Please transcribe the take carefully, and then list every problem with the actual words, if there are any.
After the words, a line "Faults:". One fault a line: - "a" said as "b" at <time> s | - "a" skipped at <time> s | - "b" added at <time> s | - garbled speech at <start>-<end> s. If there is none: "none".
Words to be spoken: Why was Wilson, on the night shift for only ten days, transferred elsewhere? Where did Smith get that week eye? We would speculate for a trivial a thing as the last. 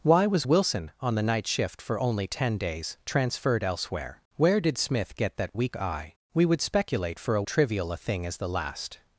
Why was Wilson, on the night shift for only ten days, transferred elsewhere? Where did Smith get that week eye? We would speculate for a trivial a thing as the last.
Faults:
none